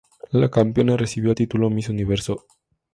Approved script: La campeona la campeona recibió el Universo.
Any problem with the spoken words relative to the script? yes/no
yes